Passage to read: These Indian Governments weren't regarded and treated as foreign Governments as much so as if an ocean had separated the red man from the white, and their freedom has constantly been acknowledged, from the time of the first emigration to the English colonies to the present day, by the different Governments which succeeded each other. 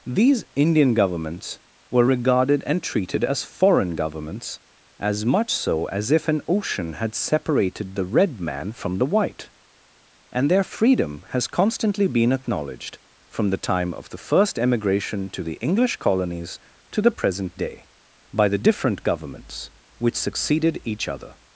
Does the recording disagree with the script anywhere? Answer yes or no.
yes